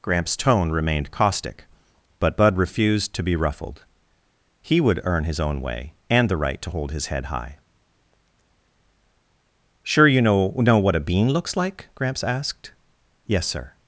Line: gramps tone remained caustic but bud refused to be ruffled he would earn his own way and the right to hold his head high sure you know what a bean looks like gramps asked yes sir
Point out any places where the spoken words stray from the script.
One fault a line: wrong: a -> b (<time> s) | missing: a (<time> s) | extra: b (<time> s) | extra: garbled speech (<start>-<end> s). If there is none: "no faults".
extra: know (10.6 s)